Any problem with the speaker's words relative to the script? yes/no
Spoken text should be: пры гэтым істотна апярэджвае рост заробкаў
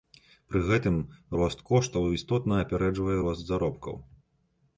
yes